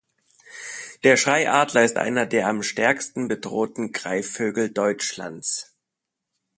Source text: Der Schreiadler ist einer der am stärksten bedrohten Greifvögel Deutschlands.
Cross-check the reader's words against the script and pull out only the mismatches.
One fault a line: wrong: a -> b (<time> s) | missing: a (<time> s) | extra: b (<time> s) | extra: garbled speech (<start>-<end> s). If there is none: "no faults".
no faults